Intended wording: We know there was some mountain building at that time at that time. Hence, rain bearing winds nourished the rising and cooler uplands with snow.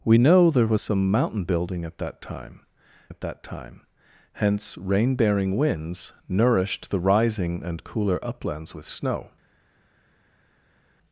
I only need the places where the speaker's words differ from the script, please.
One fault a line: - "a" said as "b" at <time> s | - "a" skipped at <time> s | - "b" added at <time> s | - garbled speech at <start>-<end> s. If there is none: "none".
none